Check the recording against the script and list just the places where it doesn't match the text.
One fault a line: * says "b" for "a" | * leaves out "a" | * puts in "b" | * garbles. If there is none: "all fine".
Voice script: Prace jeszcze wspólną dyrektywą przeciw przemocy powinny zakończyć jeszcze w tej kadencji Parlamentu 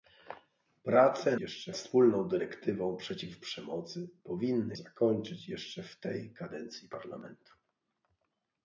all fine